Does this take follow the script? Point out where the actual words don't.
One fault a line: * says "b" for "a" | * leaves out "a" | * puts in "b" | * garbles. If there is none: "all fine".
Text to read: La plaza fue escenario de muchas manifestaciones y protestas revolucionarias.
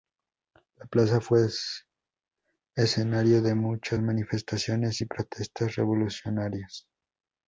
all fine